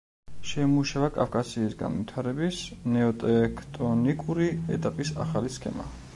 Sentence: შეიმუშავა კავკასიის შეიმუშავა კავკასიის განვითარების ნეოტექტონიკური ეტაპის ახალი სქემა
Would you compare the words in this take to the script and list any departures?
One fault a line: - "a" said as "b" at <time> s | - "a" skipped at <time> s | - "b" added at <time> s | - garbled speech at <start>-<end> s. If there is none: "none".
- "შეიმუშავა კავკასიის" skipped at 1.8 s